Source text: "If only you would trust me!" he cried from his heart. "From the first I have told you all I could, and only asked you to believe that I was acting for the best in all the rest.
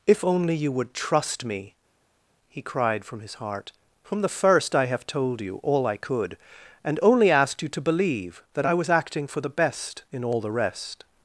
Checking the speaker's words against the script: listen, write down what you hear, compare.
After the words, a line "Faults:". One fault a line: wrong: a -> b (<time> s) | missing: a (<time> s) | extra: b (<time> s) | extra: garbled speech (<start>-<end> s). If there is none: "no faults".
"If only you would trust me!" he cried from his heart. "From the first I have told you all I could, and only asked you to believe that I was acting for the best in all the rest.
Faults:
no faults